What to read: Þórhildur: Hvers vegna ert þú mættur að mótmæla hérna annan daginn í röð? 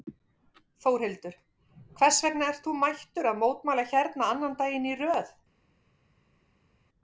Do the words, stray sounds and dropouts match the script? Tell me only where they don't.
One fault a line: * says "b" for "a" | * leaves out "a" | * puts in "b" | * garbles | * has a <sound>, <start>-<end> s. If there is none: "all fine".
all fine